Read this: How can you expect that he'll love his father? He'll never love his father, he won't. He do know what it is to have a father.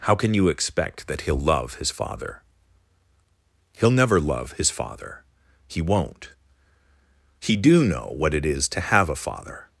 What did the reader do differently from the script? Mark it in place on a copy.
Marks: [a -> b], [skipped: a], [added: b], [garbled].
How can you expect that he'll love his father? He'll never love his father, he won't. He do know what it is to have a father.